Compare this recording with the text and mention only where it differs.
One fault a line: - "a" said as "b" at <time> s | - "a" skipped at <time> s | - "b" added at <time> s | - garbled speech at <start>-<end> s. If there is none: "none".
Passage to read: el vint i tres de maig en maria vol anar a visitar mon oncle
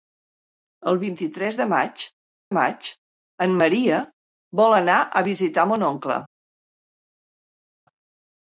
- "maig" added at 2.6 s